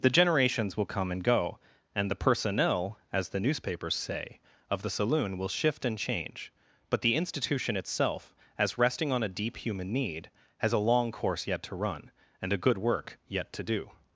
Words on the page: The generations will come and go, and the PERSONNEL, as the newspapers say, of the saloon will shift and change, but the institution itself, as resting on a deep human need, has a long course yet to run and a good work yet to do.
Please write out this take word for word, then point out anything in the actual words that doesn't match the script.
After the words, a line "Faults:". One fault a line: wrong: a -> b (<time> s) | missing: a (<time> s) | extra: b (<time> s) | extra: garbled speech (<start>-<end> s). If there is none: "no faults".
The generations will come and go, and the PERSONNEL, as the newspapers say, of the saloon will shift and change, but the institution itself, as resting on a deep human need, has a long course yet to run and a good work yet to do.
Faults:
no faults